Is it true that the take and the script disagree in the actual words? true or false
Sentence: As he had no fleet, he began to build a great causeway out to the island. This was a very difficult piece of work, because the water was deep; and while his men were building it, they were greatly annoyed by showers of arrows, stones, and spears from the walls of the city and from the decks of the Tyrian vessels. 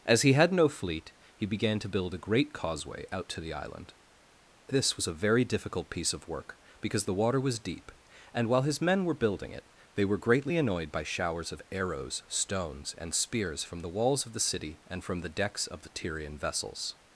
false